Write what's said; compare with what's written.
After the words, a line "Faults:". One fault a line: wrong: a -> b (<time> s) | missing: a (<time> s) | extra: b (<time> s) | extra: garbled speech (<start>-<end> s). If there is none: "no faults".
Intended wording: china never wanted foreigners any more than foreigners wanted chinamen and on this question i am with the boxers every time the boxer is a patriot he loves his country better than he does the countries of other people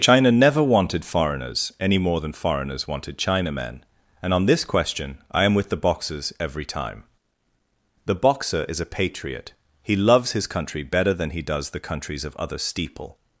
china never wanted foreigners any more than foreigners wanted chinamen and on this question i am with the boxers every time the boxer is a patriot he loves his country better than he does the countries of other steeple
Faults:
wrong: people -> steeple (12.6 s)